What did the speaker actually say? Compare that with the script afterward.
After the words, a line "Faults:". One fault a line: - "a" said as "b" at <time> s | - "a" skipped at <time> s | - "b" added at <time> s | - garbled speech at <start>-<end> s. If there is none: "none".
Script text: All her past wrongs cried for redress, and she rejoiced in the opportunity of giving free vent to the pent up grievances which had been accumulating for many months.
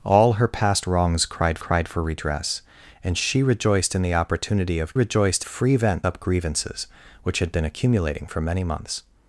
All her past wrongs cried cried for redress, and she rejoiced in the opportunity of rejoiced free vent up grievances which had been accumulating for many months.
Faults:
- "cried" added at 1.6 s
- "giving" said as "rejoiced" at 4.9 s
- "to the pent" skipped at 6.0 s